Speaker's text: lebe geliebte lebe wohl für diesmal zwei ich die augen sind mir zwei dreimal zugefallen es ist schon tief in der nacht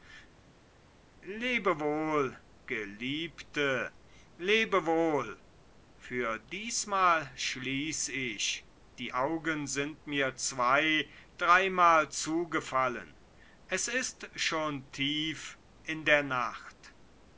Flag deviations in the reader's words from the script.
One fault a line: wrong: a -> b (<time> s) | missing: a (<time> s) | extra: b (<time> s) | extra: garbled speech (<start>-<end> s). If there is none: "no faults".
extra: wohl (1.8 s)
wrong: zwei -> schließ (7.4 s)